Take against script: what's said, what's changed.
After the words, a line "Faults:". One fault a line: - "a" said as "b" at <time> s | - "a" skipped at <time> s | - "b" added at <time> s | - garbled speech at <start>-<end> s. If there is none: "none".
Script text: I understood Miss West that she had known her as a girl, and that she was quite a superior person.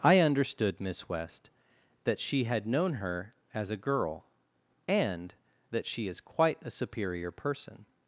I understood Miss West that she had known her as a girl, and that she is quite a superior person.
Faults:
- "was" said as "is" at 6.1 s